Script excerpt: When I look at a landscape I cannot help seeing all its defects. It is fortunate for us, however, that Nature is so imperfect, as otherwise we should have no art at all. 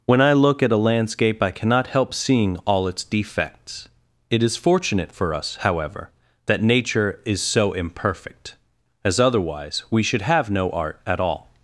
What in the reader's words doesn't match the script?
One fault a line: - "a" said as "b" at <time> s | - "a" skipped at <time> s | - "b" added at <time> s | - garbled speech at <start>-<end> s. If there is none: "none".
none